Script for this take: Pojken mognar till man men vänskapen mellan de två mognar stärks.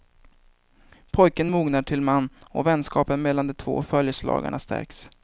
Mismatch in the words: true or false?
true